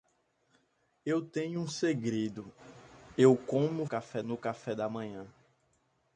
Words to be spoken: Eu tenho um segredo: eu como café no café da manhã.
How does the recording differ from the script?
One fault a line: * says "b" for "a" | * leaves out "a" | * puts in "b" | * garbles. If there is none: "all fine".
all fine